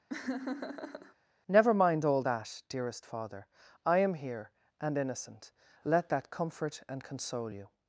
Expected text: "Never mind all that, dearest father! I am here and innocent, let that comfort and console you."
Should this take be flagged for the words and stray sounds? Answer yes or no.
yes